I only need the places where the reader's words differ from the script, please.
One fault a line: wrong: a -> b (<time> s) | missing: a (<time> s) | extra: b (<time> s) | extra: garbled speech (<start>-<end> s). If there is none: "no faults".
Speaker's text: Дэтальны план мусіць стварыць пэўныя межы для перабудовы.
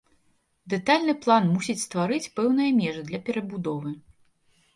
no faults